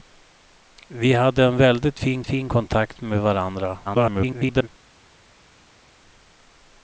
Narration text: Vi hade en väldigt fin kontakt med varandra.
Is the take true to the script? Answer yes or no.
no